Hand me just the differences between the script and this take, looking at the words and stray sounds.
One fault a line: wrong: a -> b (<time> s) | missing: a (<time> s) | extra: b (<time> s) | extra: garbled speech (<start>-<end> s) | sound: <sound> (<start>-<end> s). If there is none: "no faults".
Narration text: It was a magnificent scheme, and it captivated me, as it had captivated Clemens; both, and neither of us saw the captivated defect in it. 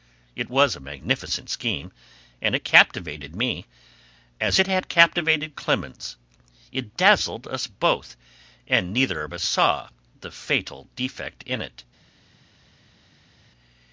extra: it dazzled us (6.7 s)
wrong: captivated -> fatal (10.3 s)